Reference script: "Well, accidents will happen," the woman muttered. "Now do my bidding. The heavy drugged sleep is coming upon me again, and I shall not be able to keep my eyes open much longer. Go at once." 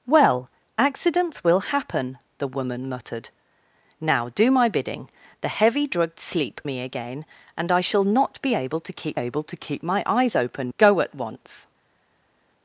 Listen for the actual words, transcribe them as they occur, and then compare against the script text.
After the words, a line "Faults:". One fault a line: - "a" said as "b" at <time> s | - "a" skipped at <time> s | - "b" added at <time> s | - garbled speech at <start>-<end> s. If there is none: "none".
"Well, accidents will happen," the woman muttered. "Now do my bidding. The heavy drugged sleep me again, and I shall not be able to keep able to keep my eyes open. Go at once."
Faults:
- "is coming upon" skipped at 6.6 s
- "able to keep" added at 9.1 s
- "much longer" skipped at 10.7 s